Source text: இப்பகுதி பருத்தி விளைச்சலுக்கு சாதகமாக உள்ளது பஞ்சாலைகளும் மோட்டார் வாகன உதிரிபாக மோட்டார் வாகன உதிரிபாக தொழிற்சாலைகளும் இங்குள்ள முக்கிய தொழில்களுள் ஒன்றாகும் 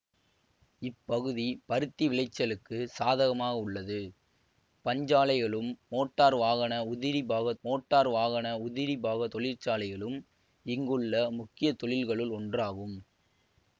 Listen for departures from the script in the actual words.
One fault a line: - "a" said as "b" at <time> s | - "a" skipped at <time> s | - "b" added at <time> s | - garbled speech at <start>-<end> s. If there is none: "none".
none